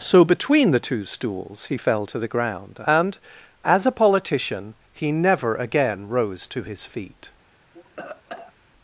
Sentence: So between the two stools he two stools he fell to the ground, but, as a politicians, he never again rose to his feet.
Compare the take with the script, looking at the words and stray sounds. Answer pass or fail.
fail